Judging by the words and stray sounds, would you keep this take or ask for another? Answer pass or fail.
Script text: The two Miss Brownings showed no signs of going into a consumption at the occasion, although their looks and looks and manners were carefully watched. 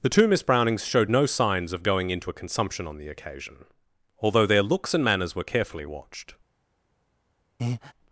fail